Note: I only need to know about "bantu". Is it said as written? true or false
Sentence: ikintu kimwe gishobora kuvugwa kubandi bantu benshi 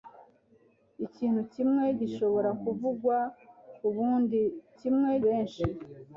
false